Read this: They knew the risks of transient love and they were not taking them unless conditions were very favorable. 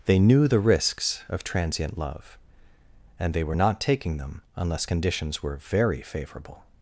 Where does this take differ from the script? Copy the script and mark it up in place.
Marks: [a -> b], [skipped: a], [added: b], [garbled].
They knew the risks of transient love and they were not taking them unless conditions were very favorable.